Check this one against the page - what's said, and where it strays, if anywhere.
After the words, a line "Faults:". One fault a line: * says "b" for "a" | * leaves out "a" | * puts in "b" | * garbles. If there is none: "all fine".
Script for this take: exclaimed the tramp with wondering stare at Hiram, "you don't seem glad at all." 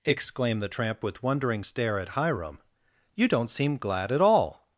exclaimed the tramp with wondering stare at Hiram, "you don't seem glad at all."
Faults:
all fine